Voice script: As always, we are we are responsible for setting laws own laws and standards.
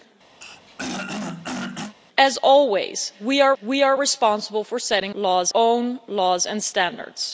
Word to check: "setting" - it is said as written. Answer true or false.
true